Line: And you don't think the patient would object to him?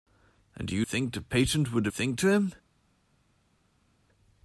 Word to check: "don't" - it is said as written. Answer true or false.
false